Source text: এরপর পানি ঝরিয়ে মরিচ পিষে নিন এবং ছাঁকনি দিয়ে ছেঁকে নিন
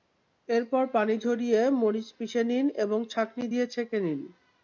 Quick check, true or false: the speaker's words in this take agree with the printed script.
true